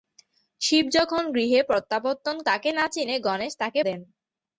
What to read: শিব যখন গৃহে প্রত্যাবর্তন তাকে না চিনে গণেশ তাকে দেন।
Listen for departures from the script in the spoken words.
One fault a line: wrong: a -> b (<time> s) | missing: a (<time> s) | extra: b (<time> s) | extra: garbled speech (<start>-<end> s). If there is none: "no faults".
no faults